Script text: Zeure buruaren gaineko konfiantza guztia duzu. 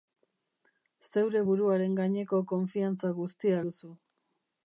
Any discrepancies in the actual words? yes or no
no